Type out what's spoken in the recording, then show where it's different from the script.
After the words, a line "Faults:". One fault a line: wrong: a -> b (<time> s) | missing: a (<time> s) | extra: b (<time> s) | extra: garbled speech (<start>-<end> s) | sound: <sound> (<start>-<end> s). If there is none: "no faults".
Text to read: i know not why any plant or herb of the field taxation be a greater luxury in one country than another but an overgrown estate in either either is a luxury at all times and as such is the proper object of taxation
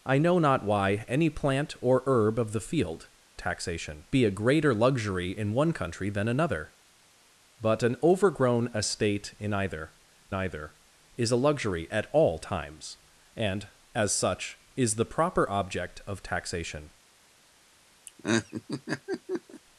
i know not why any plant or herb of the field taxation be a greater luxury in one country than another but an overgrown estate in either either is a luxury at all times and as such is the proper object of taxation
Faults:
sound: laugh (18.1-19.6 s)